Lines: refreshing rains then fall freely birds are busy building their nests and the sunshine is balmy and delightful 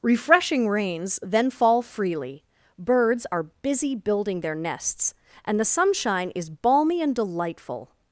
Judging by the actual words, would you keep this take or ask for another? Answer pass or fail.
pass